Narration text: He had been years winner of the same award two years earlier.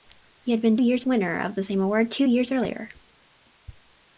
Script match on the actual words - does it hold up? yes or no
yes